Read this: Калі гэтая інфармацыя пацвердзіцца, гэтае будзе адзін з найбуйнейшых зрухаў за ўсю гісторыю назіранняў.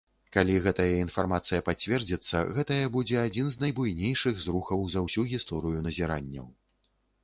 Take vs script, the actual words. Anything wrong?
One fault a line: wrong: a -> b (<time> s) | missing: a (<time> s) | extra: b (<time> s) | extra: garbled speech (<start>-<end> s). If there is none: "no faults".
no faults